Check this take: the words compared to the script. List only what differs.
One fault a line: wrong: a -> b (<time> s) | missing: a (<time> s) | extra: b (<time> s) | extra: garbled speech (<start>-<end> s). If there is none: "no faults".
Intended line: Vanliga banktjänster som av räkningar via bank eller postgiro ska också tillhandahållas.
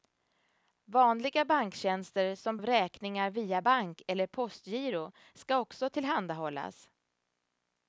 no faults